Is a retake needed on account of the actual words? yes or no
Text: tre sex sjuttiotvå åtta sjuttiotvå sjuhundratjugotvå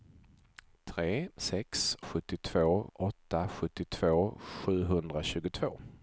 no